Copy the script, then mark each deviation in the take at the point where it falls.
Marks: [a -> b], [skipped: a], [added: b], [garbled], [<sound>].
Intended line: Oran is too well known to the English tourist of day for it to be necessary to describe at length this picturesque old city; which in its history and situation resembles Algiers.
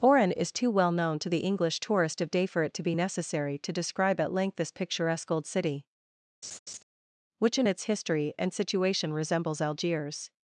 Oran is too well known to the English tourist of day for it to be necessary to describe at length this picturesque old city; [laugh] which in its history and situation resembles Algiers.